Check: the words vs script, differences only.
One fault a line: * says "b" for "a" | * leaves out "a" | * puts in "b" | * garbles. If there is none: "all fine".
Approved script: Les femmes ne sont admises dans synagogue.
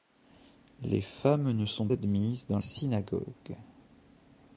all fine